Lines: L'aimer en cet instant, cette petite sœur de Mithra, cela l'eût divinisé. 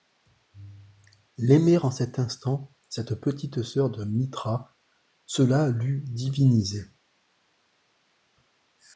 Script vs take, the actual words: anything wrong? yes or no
no